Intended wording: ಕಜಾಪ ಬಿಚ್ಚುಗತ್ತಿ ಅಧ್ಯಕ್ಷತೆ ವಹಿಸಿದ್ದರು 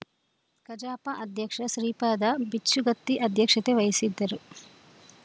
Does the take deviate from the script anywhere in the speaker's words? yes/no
yes